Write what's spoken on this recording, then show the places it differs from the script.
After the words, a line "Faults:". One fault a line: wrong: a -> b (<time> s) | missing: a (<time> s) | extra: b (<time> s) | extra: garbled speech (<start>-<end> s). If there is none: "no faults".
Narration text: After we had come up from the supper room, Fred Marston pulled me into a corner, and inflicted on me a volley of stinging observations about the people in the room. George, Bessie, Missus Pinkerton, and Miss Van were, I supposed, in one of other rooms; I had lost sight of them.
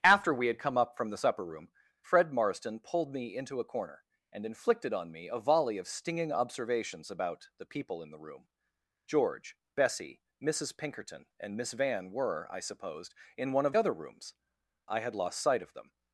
After we had come up from the supper room, Fred Marston pulled me into a corner, and inflicted on me a volley of stinging observations about the people in the room. George, Bessie, Missus Pinkerton, and Miss Van were, I supposed, in one of other rooms; I had lost sight of them.
Faults:
no faults